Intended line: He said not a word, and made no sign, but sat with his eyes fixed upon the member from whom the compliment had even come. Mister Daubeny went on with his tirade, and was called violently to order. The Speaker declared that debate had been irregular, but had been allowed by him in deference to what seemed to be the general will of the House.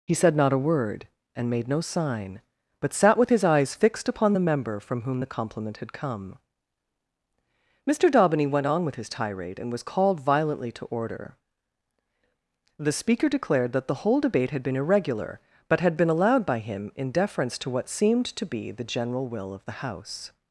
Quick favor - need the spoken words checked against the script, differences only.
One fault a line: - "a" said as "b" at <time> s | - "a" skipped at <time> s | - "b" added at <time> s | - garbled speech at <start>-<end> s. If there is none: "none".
- "even" skipped at 5.9 s
- "the whole" added at 13.9 s